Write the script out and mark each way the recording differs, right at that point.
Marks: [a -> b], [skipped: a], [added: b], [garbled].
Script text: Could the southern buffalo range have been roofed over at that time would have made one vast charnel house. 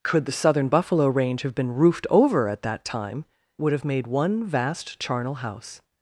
Could the southern buffalo range have been roofed over at that time would have made one vast charnel house.